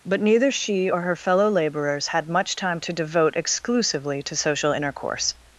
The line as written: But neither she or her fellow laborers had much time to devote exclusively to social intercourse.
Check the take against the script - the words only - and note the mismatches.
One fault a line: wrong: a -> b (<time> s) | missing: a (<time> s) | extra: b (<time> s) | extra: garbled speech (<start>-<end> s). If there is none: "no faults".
no faults